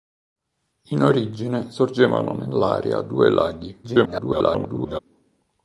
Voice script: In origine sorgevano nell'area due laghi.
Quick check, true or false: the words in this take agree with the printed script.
false